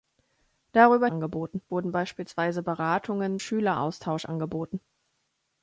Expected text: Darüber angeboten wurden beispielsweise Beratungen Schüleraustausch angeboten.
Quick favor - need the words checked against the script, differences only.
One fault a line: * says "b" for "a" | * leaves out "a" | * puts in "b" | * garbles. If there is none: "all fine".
all fine